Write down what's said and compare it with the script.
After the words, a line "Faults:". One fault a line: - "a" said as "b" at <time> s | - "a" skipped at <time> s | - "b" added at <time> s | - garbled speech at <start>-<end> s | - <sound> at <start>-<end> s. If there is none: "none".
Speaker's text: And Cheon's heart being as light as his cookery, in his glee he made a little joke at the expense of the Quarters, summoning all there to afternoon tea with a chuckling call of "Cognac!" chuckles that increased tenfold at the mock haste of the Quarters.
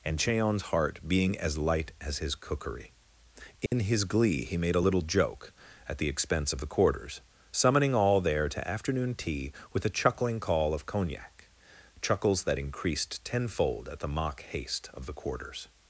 And Cheon's heart being as light as his cookery, in his glee he made a little joke at the expense of the Quarters, summoning all there to afternoon tea with a chuckling call of "Cognac!" chuckles that increased tenfold at the mock haste of the Quarters.
Faults:
- dropout at 3.7-3.7 s